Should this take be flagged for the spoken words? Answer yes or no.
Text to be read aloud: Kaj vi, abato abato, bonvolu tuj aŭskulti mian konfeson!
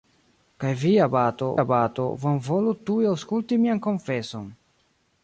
no